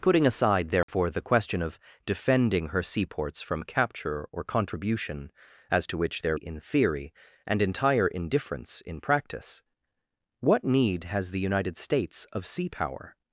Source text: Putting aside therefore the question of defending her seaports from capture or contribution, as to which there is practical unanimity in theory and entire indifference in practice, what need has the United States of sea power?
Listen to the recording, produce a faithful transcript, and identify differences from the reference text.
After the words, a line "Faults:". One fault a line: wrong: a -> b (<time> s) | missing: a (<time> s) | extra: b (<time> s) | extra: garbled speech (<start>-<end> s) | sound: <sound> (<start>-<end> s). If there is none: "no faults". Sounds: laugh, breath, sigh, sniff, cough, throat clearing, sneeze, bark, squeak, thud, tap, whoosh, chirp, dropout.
Putting aside therefore the question of defending her seaports from capture or contribution, as to which there in theory and entire indifference in practice, what need has the United States of sea power?
Faults:
sound: dropout (0.8-0.9 s)
missing: is practical unanimity (6.4 s)